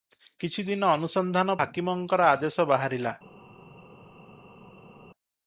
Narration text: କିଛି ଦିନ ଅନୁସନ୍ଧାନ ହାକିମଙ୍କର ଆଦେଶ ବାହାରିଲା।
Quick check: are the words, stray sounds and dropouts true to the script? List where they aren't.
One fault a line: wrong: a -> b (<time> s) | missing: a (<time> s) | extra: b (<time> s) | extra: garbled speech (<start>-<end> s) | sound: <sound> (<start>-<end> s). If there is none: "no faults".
no faults